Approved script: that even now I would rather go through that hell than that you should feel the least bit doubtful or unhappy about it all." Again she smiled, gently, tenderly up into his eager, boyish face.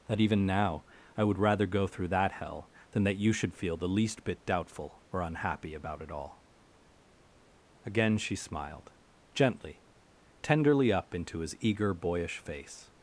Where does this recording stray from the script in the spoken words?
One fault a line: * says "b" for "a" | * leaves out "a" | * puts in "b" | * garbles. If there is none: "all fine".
all fine